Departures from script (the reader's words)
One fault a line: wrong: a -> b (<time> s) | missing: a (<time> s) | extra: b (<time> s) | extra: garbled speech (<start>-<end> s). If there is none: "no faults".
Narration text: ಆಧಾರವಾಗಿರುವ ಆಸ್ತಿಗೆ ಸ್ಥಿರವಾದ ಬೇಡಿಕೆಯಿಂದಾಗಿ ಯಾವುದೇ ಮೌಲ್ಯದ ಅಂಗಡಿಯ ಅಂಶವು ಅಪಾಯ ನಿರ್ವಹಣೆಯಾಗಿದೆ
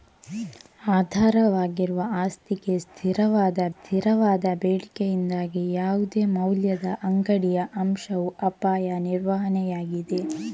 extra: ಸ್ಥಿರವಾದ (3.7 s)